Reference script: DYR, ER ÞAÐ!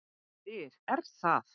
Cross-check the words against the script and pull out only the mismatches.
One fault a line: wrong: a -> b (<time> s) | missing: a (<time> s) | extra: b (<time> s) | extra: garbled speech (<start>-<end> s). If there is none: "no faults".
no faults